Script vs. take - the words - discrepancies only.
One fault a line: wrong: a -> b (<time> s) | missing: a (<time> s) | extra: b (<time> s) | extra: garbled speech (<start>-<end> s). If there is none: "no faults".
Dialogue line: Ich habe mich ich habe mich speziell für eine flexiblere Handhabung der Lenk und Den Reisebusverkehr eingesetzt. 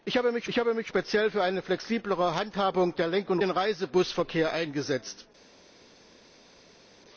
no faults